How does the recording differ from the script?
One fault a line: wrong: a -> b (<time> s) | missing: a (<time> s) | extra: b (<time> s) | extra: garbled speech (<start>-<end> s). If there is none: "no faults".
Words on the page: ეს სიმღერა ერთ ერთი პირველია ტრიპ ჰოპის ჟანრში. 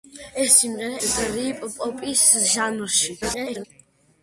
missing: ერთ ერთი პირველია (1.0 s)
extra: garbled speech (3.2-3.7 s)